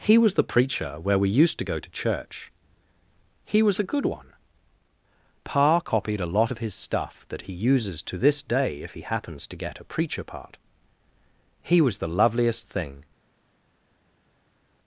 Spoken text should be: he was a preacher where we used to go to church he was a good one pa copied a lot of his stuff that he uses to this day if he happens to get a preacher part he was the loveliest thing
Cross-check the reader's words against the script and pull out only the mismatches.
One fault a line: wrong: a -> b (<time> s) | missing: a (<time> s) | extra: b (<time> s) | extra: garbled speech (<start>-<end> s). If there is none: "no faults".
wrong: a -> the (0.3 s)